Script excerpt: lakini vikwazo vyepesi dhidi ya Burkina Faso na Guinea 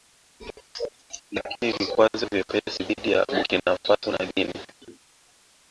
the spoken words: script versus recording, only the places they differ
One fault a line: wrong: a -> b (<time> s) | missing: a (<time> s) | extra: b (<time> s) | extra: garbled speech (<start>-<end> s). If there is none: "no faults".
no faults